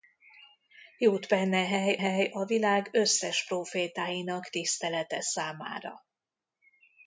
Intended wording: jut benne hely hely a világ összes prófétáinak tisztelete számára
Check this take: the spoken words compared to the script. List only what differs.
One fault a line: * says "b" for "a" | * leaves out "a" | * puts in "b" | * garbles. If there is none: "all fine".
all fine